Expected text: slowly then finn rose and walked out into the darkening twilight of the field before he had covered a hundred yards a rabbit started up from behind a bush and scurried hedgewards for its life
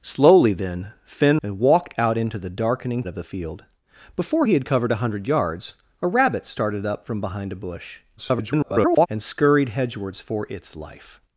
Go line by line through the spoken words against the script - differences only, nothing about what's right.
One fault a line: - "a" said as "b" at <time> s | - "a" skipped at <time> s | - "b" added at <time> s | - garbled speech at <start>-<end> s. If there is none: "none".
- "rose" skipped at 1.4 s
- "twilight" skipped at 3.0 s
- garbled speech at 8.2-9.1 s